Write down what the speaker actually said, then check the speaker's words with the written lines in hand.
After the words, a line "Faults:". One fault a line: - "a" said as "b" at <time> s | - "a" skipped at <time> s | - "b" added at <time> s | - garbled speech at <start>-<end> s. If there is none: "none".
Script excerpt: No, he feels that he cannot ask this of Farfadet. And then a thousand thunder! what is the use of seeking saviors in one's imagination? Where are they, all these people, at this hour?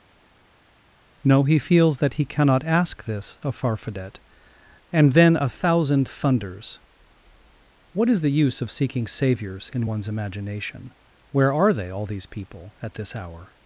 No, he feels that he cannot ask this of Farfadet. And then a thousand thunders! what is the use of seeking saviors in one's imagination? Where are they, all these people, at this hour?
Faults:
- "thunder" said as "thunders" at 6.1 s